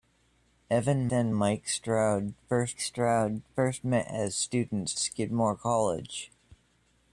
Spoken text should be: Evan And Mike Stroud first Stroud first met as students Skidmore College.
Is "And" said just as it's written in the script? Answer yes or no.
yes